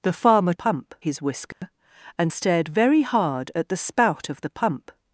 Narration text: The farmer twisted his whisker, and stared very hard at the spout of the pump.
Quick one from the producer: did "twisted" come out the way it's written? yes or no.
no